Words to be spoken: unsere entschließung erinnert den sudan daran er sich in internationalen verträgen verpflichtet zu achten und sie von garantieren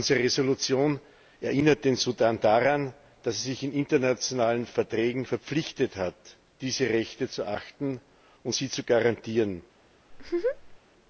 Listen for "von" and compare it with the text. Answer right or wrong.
wrong